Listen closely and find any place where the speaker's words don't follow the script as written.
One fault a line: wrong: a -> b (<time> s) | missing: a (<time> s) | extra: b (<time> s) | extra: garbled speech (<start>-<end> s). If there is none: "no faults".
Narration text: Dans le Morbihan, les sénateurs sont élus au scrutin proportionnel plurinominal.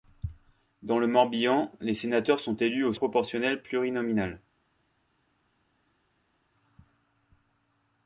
missing: scrutin (2.9 s)